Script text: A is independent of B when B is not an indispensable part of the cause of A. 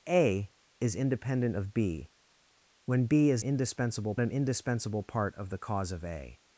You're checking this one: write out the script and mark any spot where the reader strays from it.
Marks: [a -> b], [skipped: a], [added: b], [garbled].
A is independent of B when B is [not -> indispensable] an indispensable part of the cause of A.